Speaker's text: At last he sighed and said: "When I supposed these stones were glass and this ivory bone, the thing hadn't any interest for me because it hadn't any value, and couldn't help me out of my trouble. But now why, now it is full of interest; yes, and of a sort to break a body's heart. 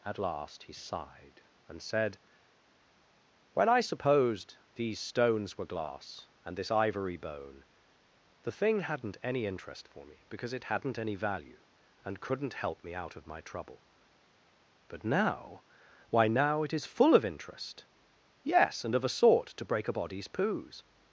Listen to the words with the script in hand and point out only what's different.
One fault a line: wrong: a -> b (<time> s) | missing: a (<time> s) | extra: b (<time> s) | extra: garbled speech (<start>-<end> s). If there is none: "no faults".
wrong: heart -> poos (20.3 s)